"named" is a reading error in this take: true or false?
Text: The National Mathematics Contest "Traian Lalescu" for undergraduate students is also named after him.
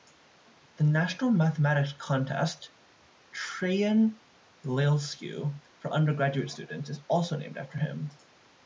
false